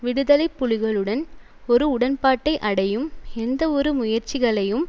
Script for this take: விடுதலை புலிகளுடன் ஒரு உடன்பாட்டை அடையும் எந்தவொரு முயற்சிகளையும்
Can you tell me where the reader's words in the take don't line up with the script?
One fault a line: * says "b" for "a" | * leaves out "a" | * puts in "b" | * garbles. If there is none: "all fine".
all fine